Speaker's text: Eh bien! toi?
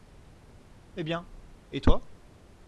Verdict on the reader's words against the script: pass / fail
fail